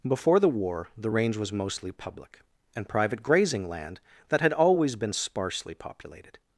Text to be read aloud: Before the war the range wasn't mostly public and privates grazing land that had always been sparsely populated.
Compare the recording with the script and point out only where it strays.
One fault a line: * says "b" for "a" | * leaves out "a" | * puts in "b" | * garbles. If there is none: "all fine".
* says "was" for "wasn't"
* says "private" for "privates"